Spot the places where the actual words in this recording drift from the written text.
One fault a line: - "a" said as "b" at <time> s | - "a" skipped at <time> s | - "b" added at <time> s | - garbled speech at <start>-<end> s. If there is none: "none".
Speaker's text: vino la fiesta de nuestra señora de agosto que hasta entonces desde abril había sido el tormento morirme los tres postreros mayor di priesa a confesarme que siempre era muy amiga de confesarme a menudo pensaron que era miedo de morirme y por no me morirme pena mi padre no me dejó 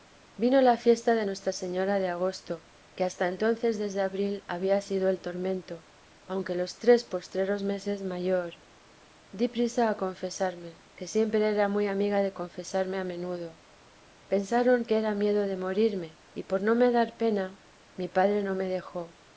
- "morirme" said as "aunque" at 6.3 s
- "meses" added at 7.6 s
- "morirme" said as "dar" at 16.9 s